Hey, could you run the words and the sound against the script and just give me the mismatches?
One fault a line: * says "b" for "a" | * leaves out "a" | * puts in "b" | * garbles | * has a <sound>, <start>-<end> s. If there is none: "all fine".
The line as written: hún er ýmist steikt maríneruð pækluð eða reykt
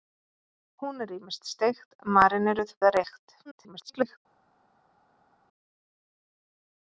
* leaves out "pækluð"
* garbles